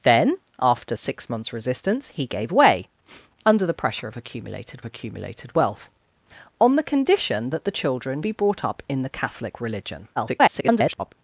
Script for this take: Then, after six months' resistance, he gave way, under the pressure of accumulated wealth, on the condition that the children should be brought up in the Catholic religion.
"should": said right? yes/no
no